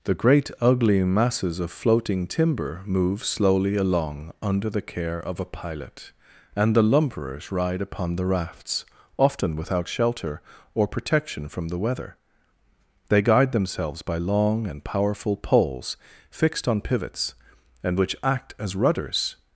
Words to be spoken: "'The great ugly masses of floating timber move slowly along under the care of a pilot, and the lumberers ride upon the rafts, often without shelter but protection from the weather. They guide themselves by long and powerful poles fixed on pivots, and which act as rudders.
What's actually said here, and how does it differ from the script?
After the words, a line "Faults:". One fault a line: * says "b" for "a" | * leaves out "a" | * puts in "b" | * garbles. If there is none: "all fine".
"'The great ugly masses of floating timber move slowly along under the care of a pilot, and the lumberers ride upon the rafts, often without shelter or protection from the weather. They guide themselves by long and powerful poles fixed on pivots, and which act as rudders.
Faults:
* says "or" for "but"